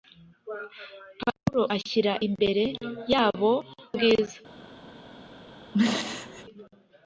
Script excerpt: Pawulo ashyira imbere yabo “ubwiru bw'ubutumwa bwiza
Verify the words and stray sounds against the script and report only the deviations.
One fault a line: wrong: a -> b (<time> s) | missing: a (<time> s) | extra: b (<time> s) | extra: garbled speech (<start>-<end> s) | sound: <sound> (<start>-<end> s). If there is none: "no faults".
missing: ubwiru bw'ubutumwa (3.5 s)
sound: throat clearing (5.7-6.5 s)